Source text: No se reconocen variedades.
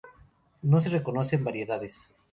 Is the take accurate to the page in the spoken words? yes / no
yes